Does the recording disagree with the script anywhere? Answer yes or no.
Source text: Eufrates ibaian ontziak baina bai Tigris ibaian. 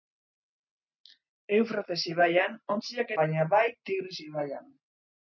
no